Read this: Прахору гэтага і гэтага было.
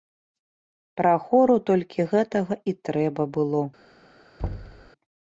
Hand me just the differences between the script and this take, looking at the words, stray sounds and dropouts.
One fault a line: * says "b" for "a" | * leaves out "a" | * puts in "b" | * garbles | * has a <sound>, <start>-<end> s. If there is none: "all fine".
* puts in "толькі"
* says "трэба" for "гэтага"
* has a thud, 4.4-4.9 s